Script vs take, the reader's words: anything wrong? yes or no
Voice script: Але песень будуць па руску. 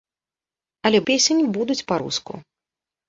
no